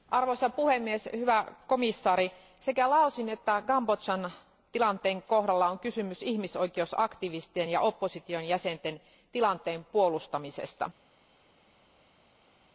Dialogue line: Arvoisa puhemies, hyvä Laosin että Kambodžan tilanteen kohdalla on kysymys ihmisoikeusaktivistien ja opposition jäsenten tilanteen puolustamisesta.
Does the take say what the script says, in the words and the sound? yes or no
no